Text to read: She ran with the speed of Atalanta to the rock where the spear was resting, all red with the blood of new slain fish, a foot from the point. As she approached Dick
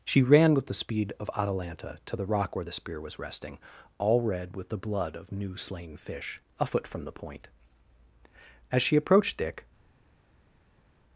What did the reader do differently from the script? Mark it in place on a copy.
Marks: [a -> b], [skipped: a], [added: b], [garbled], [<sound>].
She ran with the speed of Atalanta to the rock where the spear was resting, all red with the blood of new slain fish, a foot from the point. As she approached Dick